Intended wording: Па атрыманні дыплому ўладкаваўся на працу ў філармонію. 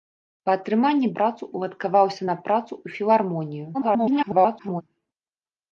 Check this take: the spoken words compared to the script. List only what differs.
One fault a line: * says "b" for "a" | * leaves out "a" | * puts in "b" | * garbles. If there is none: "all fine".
* says "працу" for "дыплому"
* garbles